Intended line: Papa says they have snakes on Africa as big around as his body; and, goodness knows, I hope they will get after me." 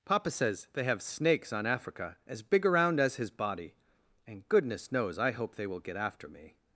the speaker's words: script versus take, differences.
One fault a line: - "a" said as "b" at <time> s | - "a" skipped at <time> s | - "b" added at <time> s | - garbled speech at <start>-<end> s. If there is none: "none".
none